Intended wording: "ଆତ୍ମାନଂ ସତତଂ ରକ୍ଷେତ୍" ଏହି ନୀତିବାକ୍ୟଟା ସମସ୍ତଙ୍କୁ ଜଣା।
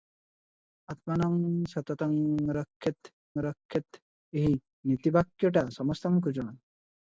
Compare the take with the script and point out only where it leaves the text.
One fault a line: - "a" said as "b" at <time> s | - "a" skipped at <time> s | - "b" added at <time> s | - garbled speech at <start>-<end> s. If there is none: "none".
- "ରକ୍ଷେତ୍" added at 3.4 s